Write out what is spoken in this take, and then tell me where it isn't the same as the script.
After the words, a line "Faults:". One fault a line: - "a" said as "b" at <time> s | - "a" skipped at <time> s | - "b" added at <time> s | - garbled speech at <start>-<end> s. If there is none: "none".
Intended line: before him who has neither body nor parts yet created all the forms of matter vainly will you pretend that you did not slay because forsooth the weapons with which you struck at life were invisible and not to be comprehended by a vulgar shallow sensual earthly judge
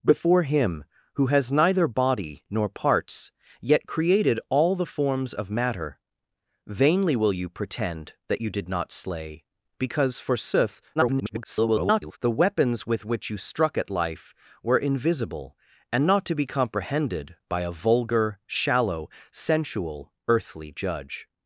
before him who has neither body nor parts yet created all the forms of matter vainly will you pretend that you did not slay because forsooth [garbled] the weapons with which you struck at life were invisible and not to be comprehended by a vulgar shallow sensual earthly judge
Faults:
- garbled speech at 11.0-12.2 s